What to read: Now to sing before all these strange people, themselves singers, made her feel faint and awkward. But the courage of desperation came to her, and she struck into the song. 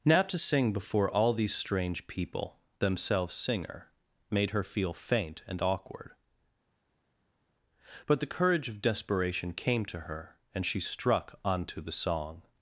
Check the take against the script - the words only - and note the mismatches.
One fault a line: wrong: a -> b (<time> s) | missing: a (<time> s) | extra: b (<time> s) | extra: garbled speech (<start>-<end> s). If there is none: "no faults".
wrong: singers -> singer (3.3 s)
wrong: into -> onto (11.4 s)